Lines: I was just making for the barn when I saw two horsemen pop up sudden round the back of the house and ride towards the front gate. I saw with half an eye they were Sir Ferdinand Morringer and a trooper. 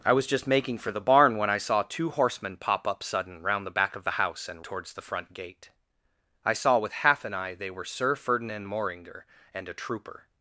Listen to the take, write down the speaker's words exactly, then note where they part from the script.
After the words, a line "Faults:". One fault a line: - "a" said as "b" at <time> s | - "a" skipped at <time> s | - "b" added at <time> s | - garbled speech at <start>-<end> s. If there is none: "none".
I was just making for the barn when I saw two horsemen pop up sudden round the back of the house and towards the front gate. I saw with half an eye they were Sir Ferdinand Morringer and a trooper.
Faults:
- "ride" skipped at 4.7 s